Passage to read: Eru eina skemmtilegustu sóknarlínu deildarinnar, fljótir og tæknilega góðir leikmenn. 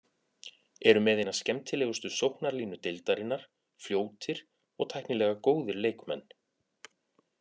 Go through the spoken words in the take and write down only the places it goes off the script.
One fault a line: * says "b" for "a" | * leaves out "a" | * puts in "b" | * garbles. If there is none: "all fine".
* puts in "með"